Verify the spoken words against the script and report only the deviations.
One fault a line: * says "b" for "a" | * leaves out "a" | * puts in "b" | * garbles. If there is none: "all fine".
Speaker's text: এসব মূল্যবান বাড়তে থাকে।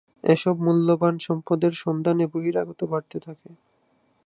* puts in "সম্পদের সন্ধানে বহিরাগত"